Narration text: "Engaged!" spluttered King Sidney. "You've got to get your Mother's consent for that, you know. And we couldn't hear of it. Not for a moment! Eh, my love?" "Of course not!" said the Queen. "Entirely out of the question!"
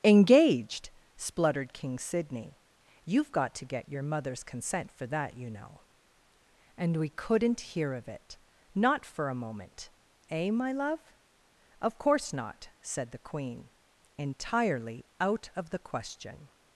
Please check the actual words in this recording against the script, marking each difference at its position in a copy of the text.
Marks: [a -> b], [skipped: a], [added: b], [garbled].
"Engaged!" spluttered King Sidney. "You've got to get your Mother's consent for that, you know. And we couldn't hear of it. Not for a moment! Eh, my love?" "Of course not!" said the Queen. "Entirely out of the question!"